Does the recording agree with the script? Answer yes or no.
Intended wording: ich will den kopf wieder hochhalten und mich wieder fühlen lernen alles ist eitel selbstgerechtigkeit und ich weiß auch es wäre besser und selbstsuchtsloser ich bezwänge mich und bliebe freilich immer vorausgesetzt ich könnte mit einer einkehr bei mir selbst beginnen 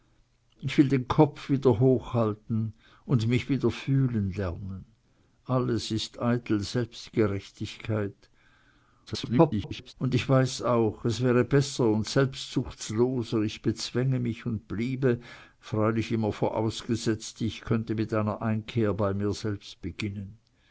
no